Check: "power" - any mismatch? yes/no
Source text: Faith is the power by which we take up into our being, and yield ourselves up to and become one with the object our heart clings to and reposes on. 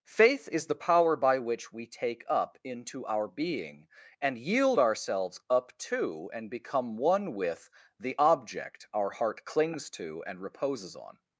no